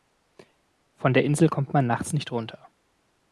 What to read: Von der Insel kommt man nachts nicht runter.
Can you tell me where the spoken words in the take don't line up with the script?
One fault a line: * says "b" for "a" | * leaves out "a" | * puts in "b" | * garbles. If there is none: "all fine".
all fine